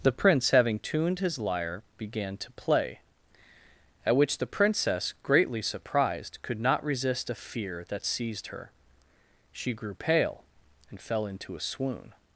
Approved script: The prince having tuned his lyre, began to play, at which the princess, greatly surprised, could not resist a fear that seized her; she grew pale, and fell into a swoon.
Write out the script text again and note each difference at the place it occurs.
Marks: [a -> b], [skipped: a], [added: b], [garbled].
The prince having tuned his lyre, began to play, at which the princess, greatly surprised, could not resist a fear that seized her; she grew pale, and fell into a swoon.